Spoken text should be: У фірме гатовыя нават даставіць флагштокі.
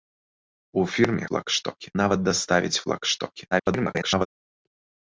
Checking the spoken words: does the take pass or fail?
fail